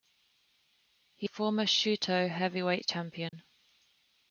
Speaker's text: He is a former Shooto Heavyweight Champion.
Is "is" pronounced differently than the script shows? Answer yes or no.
yes